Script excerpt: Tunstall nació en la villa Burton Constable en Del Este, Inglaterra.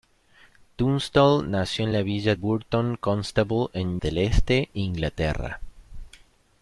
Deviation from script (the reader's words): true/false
false